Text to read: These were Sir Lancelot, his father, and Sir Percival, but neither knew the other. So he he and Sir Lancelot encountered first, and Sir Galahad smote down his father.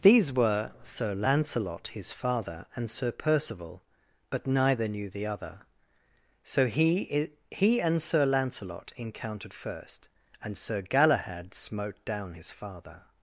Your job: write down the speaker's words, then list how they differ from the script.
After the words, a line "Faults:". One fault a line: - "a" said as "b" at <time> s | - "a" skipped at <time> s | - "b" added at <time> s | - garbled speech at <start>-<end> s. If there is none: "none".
These were Sir Lancelot, his father, and Sir Percival, but neither knew the other. So he he and Sir Lancelot encountered first, and Sir Galahad smote down his father.
Faults:
none